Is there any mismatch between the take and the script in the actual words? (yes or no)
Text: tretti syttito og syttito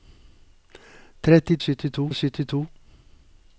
no